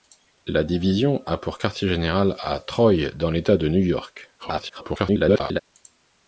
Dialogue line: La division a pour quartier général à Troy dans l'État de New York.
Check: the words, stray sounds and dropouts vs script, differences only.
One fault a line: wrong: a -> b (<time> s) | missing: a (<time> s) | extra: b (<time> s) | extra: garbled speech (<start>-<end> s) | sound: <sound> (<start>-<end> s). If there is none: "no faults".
extra: garbled speech (4.4-5.6 s)